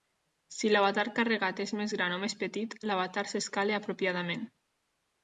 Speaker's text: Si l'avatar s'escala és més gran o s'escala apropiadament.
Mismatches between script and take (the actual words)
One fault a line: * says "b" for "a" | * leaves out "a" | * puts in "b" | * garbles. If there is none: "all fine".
* says "carregat" for "s'escala"
* puts in "més petit l'avatar"